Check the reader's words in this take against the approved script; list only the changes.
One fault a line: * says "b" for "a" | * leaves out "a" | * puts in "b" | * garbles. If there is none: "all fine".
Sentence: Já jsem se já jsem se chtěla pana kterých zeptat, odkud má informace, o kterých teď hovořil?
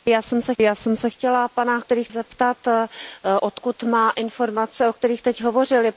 all fine